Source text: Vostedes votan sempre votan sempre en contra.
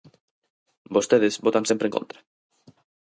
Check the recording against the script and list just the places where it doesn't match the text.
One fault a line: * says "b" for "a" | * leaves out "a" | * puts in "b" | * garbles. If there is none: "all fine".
* leaves out "votan sempre"